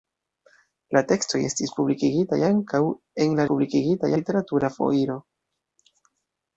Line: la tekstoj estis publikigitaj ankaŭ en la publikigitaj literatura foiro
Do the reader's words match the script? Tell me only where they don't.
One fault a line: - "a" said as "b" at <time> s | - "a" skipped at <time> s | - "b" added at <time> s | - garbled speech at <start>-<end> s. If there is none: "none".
none